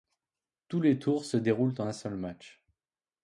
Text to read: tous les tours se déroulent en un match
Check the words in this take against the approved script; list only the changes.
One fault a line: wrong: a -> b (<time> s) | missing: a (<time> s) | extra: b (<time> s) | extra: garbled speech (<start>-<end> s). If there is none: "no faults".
extra: seul (1.9 s)